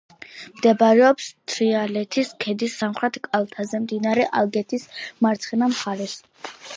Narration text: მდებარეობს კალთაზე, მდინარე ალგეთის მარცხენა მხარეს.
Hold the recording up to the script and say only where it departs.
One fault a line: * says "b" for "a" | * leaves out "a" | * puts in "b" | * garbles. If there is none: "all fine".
* puts in "თრიალეთის ქედის სამხრეთ"